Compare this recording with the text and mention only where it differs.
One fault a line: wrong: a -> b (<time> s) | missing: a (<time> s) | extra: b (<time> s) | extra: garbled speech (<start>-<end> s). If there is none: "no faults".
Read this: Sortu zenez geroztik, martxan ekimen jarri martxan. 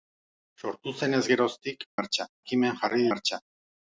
no faults